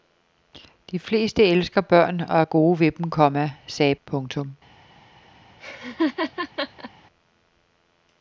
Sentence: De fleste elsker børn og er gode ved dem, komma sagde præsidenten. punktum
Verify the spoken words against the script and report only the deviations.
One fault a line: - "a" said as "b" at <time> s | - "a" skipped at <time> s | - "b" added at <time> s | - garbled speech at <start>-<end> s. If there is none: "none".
- "præsidenten" skipped at 3.9 s